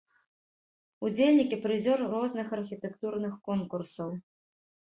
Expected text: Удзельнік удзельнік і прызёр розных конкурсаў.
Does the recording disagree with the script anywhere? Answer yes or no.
yes